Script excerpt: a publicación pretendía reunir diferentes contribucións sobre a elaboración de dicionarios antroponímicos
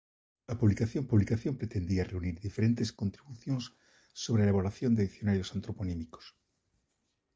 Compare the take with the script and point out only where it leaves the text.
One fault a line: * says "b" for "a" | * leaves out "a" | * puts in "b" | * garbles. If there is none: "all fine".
* puts in "publicación"